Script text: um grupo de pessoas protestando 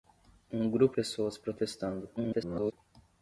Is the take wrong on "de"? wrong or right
wrong